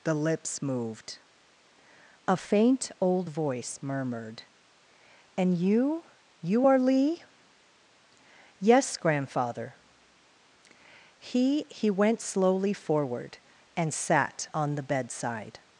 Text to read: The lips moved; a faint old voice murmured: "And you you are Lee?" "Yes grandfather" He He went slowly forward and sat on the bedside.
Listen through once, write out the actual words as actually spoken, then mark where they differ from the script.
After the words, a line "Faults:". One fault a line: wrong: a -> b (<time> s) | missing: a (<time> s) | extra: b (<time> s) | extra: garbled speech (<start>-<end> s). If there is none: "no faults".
The lips moved; a faint old voice murmured: "And you you are Lee?" "Yes grandfather" He He went slowly forward and sat on the bedside.
Faults:
no faults